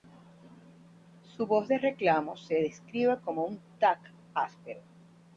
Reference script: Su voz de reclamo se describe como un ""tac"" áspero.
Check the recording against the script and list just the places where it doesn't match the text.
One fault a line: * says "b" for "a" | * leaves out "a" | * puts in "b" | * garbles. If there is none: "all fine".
all fine